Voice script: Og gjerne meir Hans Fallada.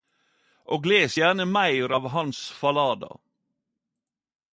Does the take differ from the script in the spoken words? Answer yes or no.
yes